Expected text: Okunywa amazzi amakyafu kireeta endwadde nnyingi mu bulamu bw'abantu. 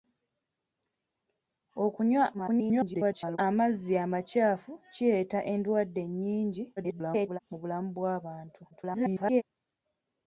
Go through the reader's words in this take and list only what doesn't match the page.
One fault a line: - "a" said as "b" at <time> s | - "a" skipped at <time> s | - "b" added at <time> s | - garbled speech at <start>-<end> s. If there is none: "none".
- garbled speech at 2.3-3.4 s
- garbled speech at 6.8-7.4 s
- garbled speech at 8.7-9.4 s